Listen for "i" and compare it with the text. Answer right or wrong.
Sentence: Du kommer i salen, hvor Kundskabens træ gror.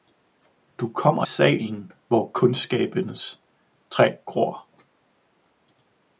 wrong